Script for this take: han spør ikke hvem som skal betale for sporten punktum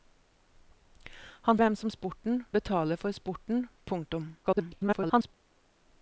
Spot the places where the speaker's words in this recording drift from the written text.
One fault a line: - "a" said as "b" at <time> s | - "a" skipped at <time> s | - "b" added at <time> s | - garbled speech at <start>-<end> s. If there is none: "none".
- "spør ikke" skipped at 1.6 s
- "skal" said as "sporten" at 1.9 s
- garbled speech at 4.4-5.3 s